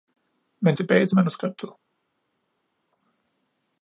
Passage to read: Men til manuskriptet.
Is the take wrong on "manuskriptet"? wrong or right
right